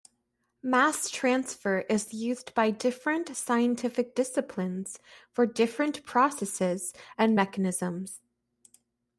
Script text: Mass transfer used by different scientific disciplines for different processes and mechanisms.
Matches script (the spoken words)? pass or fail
fail